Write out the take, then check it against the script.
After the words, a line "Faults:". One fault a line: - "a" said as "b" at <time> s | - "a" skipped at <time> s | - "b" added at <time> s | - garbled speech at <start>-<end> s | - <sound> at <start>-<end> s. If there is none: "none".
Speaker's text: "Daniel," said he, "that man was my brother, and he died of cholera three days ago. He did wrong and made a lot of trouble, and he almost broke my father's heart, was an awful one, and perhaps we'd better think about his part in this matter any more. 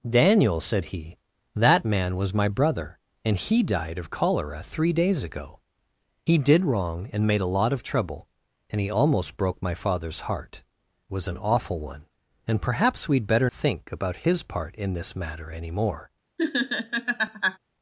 "Daniel," said he, "that man was my brother, and he died of cholera three days ago. He did wrong and made a lot of trouble, and he almost broke my father's heart, was an awful one, and perhaps we'd better think about his part in this matter any more.
Faults:
- laugh at 16.4-17.6 s